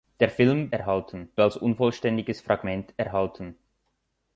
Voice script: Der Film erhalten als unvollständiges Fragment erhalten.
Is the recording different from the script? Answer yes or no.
no